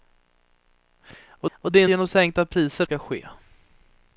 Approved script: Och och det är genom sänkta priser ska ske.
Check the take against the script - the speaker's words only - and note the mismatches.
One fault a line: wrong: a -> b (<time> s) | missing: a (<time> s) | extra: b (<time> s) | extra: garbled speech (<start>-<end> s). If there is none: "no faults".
no faults